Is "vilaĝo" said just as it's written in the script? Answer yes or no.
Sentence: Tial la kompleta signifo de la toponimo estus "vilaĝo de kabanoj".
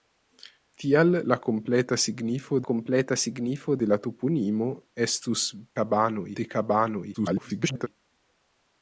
no